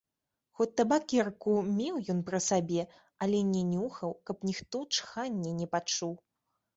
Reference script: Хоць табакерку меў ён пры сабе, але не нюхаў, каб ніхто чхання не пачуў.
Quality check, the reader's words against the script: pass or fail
pass